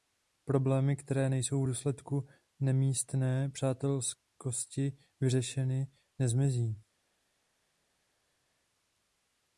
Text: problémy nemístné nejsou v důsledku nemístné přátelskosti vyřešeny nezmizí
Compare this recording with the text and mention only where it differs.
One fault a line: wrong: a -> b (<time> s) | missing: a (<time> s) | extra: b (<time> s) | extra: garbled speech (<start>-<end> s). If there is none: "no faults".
wrong: nemístné -> které (0.9 s)